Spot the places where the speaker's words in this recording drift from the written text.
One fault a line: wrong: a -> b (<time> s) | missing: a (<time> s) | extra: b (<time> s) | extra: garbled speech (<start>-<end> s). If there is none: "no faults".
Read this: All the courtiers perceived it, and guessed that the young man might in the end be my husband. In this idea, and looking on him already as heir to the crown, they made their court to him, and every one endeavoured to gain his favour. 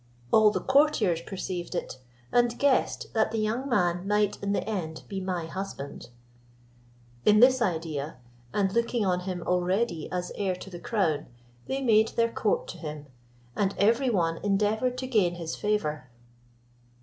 no faults